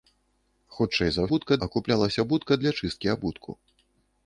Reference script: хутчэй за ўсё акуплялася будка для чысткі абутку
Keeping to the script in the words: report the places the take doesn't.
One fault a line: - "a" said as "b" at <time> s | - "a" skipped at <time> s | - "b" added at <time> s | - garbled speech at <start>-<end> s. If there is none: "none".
- "ўсё" said as "будка" at 1.3 s